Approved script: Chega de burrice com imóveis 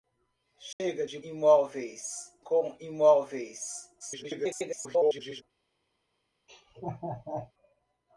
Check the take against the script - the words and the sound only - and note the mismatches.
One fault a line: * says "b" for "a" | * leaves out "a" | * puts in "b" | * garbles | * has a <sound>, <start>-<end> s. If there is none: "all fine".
* has a dropout, 0.7-0.8 s
* says "imóveis" for "burrice"
* garbles
* has a laugh, 6.5-7.5 s